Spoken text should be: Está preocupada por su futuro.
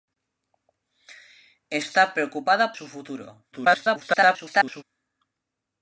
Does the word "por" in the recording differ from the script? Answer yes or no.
yes